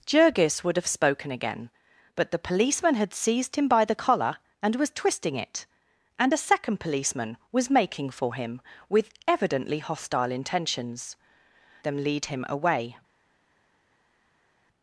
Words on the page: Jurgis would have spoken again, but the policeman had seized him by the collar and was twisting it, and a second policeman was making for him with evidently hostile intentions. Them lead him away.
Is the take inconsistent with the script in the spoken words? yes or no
no